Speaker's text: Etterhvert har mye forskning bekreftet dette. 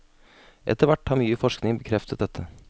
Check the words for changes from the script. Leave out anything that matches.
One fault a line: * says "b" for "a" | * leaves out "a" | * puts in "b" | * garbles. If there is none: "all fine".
all fine